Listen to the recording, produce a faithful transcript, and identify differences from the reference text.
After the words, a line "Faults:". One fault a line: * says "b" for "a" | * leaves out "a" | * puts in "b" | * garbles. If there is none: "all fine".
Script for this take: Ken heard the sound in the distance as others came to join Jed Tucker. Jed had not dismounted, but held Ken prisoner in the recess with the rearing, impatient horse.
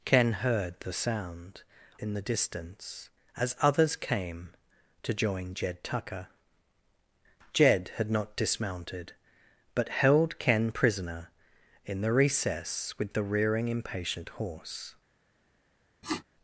Ken heard the sound in the distance as others came to join Jed Tucker. Jed had not dismounted, but held Ken prisoner in the recess with the rearing, impatient horse.
Faults:
all fine